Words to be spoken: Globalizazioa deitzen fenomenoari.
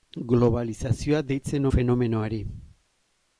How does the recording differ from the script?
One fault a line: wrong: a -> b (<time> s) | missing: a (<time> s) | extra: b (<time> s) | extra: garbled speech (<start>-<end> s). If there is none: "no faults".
no faults